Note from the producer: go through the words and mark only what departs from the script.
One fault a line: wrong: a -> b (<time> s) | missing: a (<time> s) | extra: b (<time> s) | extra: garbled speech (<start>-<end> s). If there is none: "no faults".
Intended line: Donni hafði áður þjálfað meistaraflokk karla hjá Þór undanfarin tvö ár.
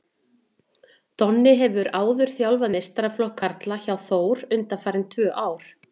wrong: hafði -> hefur (1.6 s)